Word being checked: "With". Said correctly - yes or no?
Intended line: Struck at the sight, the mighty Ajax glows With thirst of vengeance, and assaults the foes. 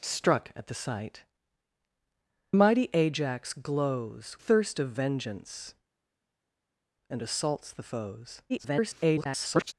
no